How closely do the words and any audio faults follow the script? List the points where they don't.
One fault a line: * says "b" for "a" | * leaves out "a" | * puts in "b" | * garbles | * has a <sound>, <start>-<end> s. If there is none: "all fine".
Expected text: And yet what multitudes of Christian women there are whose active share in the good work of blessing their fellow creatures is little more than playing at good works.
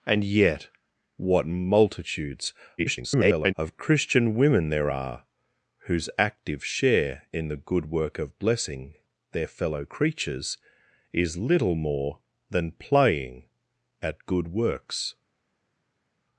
* garbles